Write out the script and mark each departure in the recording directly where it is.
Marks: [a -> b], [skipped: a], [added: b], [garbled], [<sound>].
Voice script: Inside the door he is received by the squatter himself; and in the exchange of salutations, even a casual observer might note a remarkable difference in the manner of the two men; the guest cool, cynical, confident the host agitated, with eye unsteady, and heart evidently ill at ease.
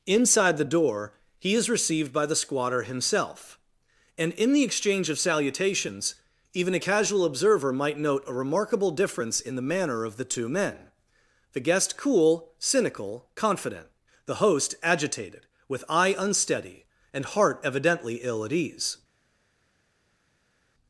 Inside the door he is received by the squatter himself; and in the exchange of salutations, even a casual observer might note a remarkable difference in the manner of the two men; the guest cool, cynical, confident the host agitated, with eye unsteady, and heart evidently ill at ease.